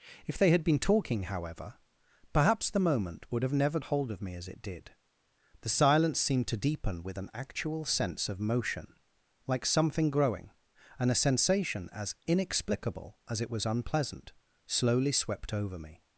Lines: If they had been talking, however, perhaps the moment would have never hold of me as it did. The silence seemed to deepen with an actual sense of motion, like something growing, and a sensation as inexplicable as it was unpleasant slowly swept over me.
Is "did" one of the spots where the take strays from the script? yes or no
no